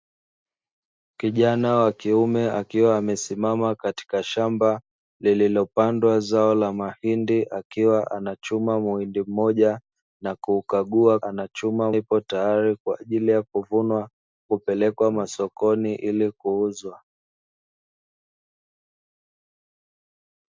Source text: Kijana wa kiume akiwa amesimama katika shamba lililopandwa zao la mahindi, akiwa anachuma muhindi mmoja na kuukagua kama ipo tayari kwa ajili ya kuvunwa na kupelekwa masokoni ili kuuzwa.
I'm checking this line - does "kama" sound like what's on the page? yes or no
no